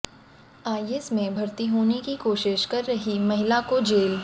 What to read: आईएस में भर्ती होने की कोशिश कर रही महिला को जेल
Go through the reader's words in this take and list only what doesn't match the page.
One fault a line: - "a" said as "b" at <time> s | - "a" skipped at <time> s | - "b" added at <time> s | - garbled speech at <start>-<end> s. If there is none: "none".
none